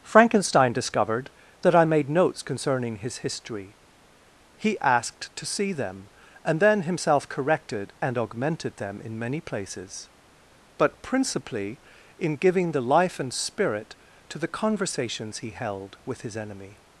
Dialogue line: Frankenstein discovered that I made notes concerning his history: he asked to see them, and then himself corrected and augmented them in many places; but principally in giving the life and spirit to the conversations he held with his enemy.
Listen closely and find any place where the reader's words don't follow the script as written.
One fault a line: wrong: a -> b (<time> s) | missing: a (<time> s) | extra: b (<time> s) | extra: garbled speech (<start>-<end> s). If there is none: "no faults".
no faults